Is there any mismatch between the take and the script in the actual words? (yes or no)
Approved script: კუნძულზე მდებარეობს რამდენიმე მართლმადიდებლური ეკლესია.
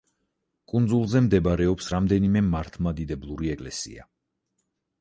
no